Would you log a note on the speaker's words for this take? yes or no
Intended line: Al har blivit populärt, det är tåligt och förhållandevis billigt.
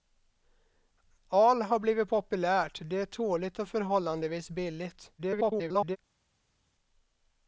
yes